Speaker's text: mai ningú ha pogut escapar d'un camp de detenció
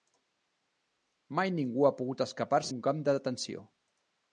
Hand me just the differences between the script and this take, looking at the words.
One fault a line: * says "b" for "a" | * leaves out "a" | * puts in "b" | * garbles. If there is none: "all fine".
all fine